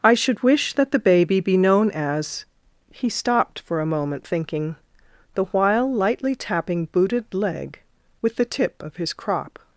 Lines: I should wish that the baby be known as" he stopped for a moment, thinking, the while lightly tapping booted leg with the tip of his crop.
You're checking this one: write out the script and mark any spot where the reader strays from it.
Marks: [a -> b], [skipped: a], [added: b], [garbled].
I should wish that the baby be known as" he stopped for a moment, thinking, the while lightly tapping booted leg with the tip of his crop.